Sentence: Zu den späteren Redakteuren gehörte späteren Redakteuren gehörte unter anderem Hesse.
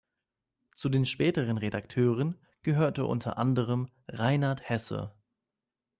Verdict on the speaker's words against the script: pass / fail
fail